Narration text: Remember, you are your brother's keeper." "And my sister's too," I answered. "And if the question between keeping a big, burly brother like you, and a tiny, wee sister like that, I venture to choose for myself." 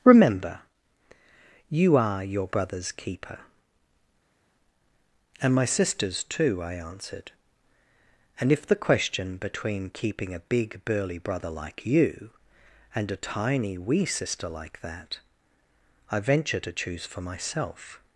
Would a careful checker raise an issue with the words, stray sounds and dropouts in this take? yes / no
no